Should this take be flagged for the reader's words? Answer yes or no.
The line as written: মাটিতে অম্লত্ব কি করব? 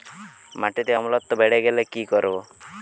yes